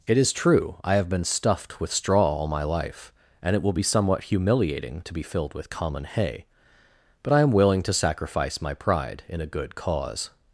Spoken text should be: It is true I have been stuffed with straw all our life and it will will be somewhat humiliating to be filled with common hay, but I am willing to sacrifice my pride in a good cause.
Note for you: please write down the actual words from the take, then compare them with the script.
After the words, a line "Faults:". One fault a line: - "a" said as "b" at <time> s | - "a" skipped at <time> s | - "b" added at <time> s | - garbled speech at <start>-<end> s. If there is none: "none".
It is true I have been stuffed with straw all my life and it will be somewhat humiliating to be filled with common hay, but I am willing to sacrifice my pride in a good cause.
Faults:
- "our" said as "my" at 2.5 s
- "will" skipped at 3.7 s